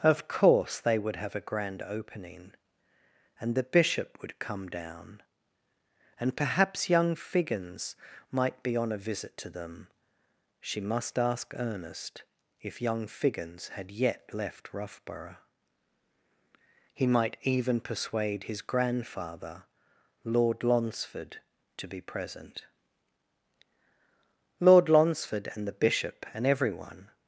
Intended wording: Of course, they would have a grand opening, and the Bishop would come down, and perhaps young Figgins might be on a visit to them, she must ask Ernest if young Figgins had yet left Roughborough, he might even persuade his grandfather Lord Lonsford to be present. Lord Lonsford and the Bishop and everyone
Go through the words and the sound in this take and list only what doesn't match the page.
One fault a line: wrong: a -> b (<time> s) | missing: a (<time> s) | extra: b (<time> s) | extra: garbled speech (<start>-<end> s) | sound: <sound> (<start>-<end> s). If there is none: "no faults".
no faults